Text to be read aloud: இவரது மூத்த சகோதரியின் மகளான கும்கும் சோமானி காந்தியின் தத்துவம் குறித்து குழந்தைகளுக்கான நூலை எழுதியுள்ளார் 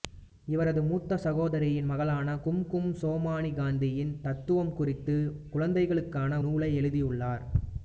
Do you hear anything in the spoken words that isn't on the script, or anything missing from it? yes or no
no